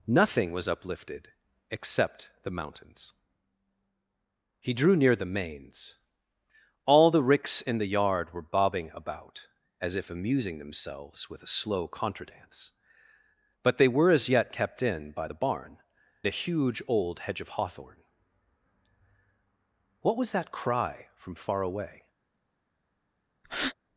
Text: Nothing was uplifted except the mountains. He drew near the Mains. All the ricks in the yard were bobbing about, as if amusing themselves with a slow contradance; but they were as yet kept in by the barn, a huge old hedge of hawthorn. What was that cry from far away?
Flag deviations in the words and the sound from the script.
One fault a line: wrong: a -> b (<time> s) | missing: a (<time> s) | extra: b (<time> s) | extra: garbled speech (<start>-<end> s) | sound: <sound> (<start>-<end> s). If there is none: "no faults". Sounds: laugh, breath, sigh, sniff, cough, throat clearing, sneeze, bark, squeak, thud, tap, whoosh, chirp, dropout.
sound: breath (23.4-23.7 s)